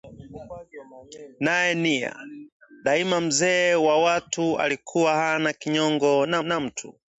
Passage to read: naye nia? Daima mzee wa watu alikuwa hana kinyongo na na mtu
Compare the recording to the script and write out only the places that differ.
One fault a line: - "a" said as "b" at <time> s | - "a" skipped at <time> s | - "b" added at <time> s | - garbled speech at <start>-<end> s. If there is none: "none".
none